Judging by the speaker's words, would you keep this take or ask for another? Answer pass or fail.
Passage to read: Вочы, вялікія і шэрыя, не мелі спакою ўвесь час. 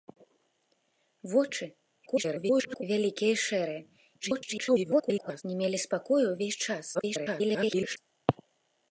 fail